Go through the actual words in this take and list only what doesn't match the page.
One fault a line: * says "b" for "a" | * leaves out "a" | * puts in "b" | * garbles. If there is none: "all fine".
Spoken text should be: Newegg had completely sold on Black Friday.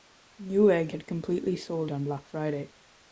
all fine